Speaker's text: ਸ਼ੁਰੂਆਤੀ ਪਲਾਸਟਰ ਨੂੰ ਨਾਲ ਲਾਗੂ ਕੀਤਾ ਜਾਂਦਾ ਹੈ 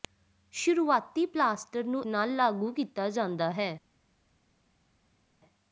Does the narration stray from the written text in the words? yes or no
no